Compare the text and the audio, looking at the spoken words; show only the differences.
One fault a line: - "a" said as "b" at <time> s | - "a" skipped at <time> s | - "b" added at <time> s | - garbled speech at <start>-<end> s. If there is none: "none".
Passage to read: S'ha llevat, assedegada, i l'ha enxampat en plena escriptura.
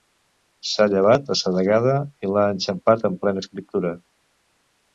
none